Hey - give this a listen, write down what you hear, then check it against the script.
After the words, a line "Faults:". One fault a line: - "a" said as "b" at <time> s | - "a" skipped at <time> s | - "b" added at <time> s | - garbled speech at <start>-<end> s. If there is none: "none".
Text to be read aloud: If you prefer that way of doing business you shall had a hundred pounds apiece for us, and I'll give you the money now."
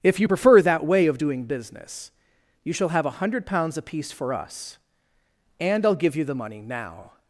If you prefer that way of doing business you shall have a hundred pounds apiece for us, and I'll give you the money now."
Faults:
- "had" said as "have" at 2.9 s